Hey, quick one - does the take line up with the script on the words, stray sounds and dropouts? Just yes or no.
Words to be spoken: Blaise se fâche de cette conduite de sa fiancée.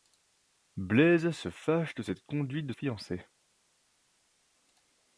no